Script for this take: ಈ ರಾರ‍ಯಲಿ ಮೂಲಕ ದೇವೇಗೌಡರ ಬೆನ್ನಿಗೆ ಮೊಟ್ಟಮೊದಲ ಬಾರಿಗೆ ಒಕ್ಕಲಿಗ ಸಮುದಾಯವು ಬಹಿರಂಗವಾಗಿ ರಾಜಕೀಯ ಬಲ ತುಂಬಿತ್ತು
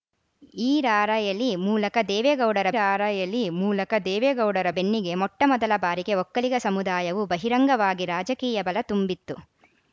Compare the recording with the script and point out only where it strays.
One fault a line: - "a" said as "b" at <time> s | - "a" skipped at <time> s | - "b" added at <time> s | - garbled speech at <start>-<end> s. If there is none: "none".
- "ರಾರ‍ಯಲಿ ಮೂಲಕ ದೇವೇಗೌಡರ" added at 2.7 s